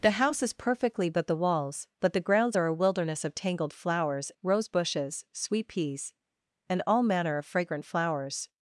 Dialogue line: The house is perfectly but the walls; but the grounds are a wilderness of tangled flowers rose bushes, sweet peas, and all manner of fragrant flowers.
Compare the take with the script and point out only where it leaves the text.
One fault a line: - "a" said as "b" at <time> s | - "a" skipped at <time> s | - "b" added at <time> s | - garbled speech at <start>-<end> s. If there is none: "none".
none